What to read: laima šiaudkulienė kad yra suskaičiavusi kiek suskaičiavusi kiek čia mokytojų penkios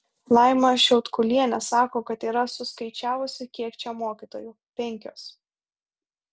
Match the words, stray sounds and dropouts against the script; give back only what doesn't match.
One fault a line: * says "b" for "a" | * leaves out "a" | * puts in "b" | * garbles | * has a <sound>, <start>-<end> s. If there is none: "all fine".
* puts in "sako"
* leaves out "suskaičiavusi kiek"